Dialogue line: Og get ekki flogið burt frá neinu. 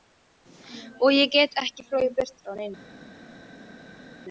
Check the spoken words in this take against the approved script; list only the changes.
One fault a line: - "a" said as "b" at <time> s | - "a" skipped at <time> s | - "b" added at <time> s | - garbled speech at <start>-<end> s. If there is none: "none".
- "ég" added at 1.2 s